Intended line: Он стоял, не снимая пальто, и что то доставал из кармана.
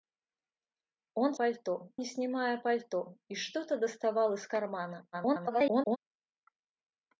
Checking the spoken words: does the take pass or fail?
fail